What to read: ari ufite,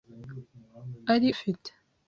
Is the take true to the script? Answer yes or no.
yes